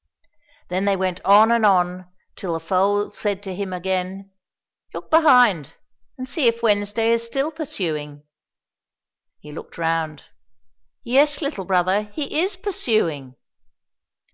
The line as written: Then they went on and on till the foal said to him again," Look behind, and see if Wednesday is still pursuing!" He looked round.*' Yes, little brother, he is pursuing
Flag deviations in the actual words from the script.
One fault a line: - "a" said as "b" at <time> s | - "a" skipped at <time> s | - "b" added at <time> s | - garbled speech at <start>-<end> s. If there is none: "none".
none